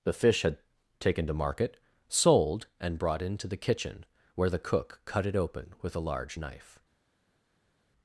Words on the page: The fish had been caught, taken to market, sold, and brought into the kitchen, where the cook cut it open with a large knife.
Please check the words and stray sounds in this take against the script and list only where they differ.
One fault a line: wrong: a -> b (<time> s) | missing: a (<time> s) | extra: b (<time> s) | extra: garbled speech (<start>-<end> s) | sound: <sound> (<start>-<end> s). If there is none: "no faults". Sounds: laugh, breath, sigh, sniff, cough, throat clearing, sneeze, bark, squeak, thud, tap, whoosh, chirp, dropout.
missing: been caught (0.6 s)